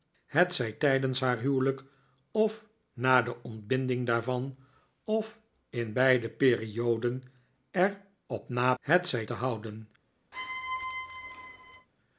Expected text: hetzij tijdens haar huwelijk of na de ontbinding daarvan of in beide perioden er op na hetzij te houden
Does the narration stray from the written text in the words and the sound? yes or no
yes